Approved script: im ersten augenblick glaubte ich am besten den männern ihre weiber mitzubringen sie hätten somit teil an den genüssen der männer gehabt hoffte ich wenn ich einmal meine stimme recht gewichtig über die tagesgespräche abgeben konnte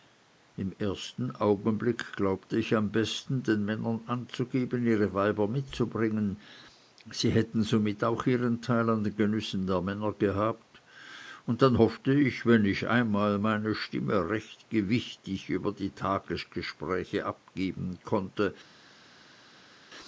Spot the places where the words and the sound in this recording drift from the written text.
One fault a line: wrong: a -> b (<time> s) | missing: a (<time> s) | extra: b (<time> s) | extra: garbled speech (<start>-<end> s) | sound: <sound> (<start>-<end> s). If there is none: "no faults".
extra: anzugeben (4.1 s)
extra: auch ihren (8.0 s)
extra: und dann (11.4 s)